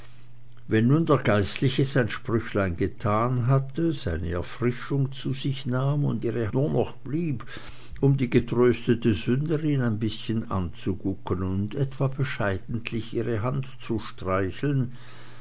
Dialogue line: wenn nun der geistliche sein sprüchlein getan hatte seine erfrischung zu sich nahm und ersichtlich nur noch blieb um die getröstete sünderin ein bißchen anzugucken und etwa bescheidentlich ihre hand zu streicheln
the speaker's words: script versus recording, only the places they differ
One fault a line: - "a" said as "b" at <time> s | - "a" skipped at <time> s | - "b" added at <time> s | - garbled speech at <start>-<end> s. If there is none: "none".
- "ersichtlich" said as "ihre" at 6.2 s